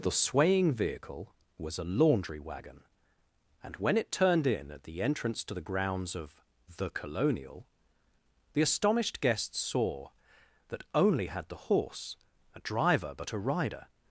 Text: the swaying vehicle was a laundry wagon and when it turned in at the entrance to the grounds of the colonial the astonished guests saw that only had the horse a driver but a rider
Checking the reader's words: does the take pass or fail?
pass